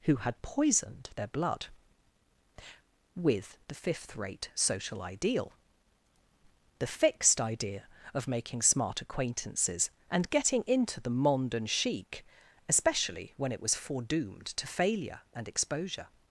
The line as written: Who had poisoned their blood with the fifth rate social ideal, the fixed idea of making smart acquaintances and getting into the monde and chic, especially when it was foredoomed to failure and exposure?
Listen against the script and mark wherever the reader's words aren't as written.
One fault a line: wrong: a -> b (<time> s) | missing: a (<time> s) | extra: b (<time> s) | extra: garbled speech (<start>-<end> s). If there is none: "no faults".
no faults